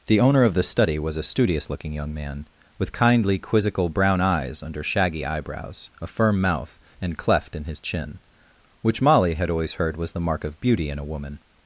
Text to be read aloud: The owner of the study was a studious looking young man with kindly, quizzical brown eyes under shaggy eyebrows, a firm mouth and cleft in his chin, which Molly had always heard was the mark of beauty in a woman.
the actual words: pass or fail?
pass